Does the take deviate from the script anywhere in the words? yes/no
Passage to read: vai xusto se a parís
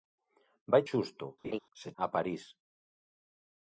no